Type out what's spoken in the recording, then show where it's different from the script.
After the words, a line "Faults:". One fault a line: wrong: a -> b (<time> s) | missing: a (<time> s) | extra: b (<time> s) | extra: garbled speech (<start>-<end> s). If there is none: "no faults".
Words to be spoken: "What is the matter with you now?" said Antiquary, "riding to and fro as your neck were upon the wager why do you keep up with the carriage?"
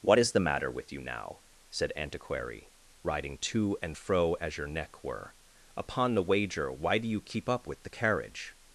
"What is the matter with you now?" said Antiquary, "riding to and fro as your neck were upon the wager why do you keep up with the carriage?"
Faults:
no faults